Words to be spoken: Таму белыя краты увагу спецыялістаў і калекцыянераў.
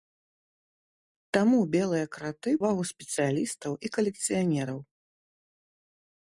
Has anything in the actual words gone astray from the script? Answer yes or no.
no